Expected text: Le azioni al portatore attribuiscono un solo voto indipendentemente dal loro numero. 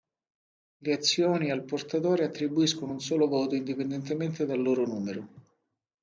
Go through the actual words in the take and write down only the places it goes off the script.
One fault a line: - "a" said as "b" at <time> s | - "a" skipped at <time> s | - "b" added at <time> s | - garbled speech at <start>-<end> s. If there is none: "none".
none